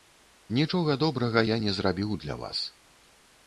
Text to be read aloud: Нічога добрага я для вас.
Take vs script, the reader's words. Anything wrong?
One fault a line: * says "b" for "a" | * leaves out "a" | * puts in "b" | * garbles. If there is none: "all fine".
* puts in "не зрабіў"